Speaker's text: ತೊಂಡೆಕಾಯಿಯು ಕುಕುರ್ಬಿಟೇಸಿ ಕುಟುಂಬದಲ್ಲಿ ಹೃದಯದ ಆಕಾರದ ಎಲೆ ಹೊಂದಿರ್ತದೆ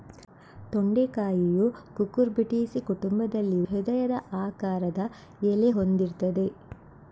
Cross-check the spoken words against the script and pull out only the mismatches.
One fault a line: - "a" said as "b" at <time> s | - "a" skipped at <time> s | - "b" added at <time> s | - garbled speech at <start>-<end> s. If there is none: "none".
none